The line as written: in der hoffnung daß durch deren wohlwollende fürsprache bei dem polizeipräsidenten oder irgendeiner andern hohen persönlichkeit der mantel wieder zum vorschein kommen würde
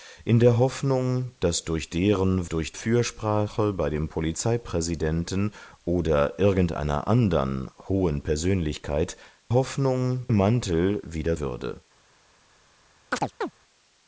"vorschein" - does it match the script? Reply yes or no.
no